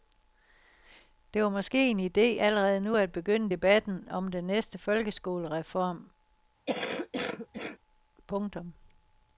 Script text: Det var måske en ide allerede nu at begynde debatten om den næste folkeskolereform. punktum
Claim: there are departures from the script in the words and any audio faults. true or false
true